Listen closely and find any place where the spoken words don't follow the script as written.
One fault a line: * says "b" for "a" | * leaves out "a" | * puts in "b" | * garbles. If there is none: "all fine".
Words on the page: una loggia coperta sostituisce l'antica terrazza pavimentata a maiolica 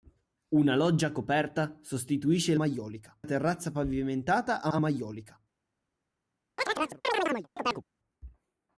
* says "maiolica" for "l'antica"
* puts in "a"